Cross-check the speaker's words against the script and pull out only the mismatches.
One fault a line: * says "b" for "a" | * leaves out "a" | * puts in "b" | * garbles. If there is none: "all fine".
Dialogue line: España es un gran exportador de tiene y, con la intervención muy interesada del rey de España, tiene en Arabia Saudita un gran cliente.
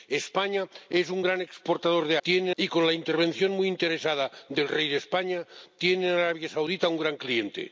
all fine